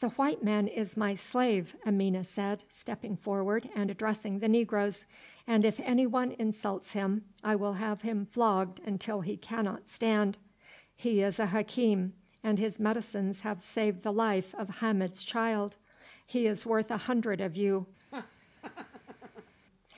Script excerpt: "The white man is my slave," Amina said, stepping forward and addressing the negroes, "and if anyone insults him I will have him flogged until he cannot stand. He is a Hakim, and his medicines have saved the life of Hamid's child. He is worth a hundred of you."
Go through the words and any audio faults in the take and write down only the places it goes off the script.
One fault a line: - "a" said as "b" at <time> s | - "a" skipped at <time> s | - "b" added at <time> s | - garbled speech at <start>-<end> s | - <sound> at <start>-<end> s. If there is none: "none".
- laugh at 18.0-19.5 s